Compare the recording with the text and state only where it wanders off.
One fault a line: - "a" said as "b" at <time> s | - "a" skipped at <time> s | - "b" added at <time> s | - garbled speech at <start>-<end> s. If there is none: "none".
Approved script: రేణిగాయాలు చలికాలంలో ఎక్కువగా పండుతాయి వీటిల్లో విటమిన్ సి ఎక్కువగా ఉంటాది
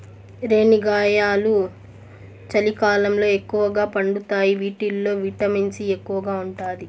none